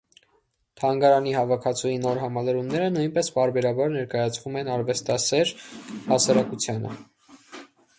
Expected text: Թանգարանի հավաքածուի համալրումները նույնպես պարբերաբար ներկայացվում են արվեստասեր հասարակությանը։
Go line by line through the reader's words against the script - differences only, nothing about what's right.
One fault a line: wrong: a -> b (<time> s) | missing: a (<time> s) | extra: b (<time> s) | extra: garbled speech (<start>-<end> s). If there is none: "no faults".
extra: նոր (2.1 s)